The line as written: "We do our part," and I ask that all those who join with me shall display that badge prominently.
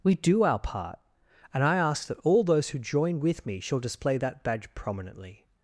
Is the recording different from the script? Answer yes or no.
no